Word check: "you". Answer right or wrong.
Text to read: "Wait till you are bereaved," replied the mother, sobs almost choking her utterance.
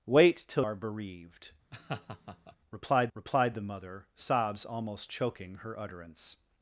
wrong